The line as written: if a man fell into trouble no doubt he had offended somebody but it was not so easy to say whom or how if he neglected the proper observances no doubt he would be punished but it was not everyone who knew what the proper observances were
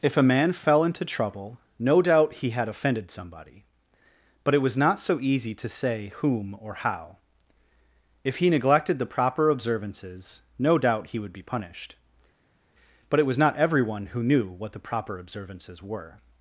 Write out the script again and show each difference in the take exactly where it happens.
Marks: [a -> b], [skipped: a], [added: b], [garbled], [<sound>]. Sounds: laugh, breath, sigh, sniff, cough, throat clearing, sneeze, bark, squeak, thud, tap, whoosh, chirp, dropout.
if a man fell into trouble no doubt he had offended somebody but it was not so easy to say whom or how if he neglected the proper observances no doubt he would be punished but it was not everyone who knew what the proper observances were